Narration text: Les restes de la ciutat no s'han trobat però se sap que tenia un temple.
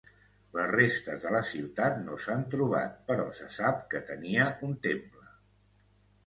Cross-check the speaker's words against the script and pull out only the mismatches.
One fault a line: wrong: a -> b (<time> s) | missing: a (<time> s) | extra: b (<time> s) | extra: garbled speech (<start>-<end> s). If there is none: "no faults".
no faults